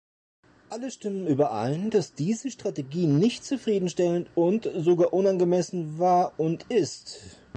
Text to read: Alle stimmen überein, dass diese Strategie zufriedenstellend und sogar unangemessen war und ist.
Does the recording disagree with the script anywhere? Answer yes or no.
yes